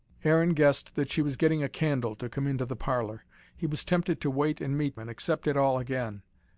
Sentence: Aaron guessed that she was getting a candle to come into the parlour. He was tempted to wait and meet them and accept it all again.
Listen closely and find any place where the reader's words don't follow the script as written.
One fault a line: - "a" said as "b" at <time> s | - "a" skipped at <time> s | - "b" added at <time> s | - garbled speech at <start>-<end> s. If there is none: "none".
- "them" skipped at 5.0 s